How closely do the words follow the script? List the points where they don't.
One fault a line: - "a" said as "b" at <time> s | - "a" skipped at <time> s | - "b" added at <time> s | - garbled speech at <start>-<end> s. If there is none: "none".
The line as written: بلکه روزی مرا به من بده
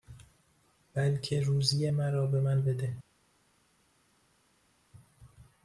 none